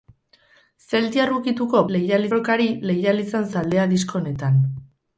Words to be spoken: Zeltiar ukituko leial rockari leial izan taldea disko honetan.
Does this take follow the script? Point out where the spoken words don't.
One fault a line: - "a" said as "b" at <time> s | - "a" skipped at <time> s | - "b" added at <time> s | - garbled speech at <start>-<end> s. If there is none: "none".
none